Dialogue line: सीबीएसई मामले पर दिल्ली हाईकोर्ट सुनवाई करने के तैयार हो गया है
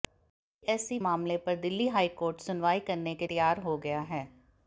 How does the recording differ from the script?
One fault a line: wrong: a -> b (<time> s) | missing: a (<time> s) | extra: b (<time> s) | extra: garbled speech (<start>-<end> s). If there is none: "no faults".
no faults